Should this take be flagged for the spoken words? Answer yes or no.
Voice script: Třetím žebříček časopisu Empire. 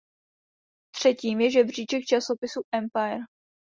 yes